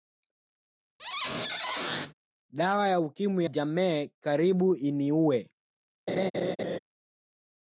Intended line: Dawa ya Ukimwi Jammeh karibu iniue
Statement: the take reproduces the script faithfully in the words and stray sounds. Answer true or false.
false